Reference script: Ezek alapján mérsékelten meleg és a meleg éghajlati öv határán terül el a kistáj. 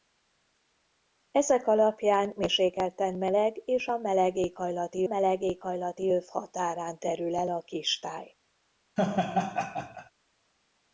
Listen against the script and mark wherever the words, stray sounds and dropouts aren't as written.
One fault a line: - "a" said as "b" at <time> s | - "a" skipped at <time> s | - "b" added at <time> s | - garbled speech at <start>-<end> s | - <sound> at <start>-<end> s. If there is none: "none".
- "meleg éghajlati" added at 5.0 s
- laugh at 9.0-10.1 s